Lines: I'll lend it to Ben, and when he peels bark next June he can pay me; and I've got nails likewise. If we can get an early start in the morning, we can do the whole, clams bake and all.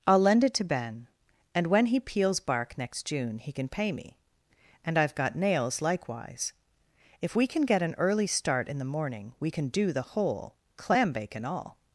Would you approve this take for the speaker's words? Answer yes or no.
no